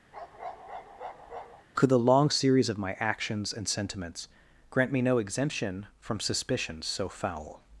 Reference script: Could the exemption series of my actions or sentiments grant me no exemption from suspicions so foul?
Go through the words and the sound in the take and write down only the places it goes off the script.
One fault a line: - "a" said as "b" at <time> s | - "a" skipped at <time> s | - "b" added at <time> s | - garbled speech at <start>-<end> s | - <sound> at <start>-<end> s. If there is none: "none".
- bark at 0.1-1.7 s
- "exemption" said as "long" at 2.0 s
- "or" said as "and" at 3.5 s